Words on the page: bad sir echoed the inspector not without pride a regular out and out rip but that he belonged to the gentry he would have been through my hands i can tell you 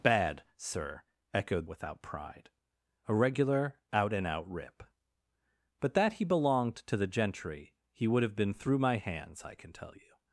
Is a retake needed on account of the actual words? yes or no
yes